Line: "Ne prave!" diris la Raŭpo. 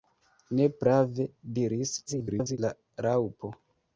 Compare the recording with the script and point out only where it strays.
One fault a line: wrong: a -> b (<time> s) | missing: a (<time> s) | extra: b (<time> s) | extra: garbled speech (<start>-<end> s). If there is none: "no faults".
extra: garbled speech (2.1-2.6 s)